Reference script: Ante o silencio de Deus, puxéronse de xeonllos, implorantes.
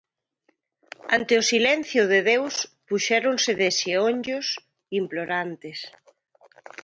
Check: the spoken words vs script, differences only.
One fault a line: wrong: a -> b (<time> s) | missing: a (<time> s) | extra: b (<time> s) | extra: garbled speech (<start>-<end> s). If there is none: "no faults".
no faults